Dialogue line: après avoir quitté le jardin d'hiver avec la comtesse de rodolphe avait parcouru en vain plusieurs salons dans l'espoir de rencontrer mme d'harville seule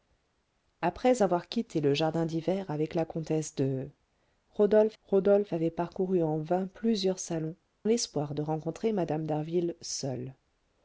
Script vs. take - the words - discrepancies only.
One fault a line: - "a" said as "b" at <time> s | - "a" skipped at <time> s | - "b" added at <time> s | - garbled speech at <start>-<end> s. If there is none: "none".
- "rodolphe" added at 5.0 s
- "dans" skipped at 7.6 s